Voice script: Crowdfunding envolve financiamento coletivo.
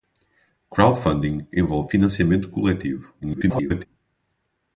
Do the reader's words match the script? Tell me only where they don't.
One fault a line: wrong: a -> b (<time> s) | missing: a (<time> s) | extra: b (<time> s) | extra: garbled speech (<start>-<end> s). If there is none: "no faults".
extra: garbled speech (3.2-3.9 s)